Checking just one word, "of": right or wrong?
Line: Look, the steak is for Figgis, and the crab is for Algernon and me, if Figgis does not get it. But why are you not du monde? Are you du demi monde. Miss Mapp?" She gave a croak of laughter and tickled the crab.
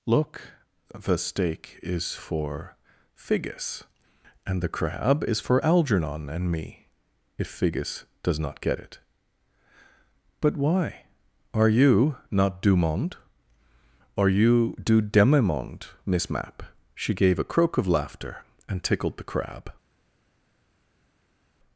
right